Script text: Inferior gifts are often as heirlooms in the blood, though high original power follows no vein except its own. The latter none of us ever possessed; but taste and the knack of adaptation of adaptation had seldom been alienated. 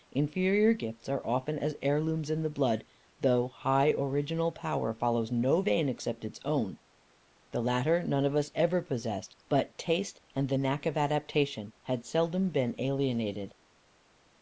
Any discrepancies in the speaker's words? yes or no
yes